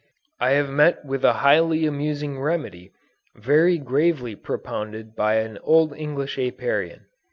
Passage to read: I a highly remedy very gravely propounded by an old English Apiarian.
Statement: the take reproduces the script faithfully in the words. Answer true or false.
false